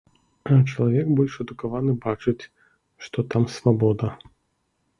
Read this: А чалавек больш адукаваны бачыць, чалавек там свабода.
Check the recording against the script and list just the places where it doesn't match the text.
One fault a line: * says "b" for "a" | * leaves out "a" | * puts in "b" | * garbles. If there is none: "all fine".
* says "што" for "чалавек"